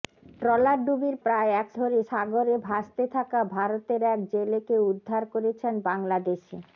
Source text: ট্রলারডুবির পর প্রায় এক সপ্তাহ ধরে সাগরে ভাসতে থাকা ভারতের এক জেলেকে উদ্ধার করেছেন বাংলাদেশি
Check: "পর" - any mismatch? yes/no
yes